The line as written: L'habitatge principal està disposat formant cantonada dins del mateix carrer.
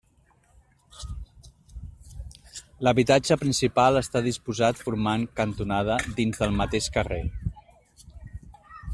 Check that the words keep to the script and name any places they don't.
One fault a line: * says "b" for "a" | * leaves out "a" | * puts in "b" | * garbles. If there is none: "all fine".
all fine